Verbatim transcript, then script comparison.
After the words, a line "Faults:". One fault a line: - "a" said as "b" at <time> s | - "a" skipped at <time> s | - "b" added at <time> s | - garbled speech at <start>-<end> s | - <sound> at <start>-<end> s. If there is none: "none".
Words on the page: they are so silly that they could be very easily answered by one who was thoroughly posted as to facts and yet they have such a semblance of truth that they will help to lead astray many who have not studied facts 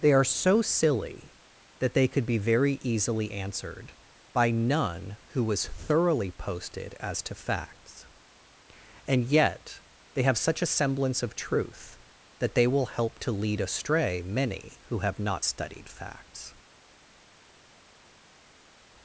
they are so silly that they could be very easily answered by none who was thoroughly posted as to facts and yet they have such a semblance of truth that they will help to lead astray many who have not studied facts
Faults:
- "one" said as "none" at 4.5 s